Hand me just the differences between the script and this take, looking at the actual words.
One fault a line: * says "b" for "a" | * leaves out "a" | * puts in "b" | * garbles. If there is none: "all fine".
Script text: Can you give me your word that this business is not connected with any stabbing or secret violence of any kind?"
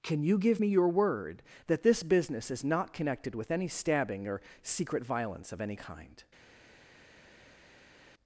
all fine